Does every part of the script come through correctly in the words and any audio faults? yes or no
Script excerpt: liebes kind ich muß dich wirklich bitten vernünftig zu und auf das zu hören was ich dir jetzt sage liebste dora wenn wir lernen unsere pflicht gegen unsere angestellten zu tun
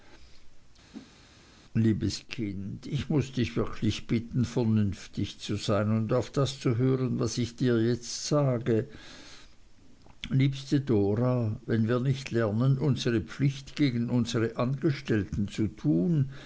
no